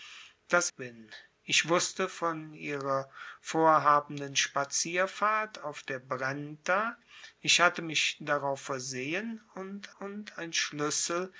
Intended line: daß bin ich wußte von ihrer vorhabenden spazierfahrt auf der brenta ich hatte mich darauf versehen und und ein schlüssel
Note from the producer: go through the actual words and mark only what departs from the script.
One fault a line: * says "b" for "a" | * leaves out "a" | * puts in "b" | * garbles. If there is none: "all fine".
all fine